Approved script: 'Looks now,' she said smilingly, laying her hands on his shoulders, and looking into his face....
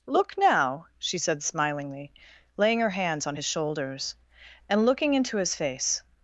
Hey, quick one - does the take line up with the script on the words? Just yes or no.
no